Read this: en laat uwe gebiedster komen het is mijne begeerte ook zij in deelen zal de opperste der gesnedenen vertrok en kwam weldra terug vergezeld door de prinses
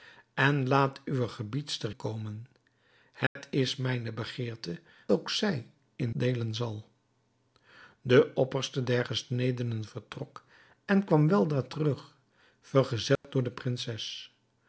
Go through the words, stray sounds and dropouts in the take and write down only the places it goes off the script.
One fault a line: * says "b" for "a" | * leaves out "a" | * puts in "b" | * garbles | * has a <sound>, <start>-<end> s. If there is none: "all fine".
* has a dropout, 3.3-3.4 s
* has a dropout, 13.2-13.2 s